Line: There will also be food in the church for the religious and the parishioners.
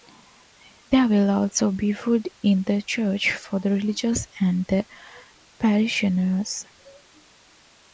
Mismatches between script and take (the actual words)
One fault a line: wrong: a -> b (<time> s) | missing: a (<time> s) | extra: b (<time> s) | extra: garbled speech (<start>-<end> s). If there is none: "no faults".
no faults